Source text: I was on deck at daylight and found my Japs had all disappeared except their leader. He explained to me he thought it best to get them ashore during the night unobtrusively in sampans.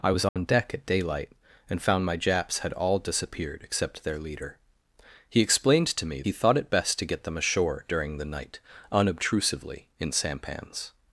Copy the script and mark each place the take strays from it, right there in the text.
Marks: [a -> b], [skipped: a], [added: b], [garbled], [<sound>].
I was on [dropout] deck at daylight and found my Japs had all disappeared except their leader. He explained to me he thought it best to get them ashore during the night unobtrusively in sampans.